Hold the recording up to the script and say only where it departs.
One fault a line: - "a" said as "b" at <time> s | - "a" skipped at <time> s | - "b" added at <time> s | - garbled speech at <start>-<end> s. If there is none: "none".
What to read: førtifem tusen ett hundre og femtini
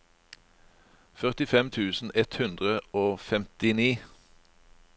none